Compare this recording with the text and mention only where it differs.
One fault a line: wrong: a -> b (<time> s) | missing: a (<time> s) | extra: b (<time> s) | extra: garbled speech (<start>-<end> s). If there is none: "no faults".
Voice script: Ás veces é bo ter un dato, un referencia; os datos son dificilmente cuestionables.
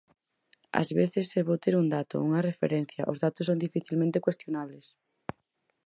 wrong: un -> unha (2.3 s)